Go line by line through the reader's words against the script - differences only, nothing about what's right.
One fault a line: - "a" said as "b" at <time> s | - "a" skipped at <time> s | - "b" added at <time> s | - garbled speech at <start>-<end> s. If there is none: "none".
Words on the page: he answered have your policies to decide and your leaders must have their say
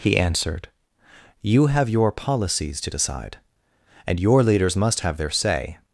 - "you" added at 1.4 s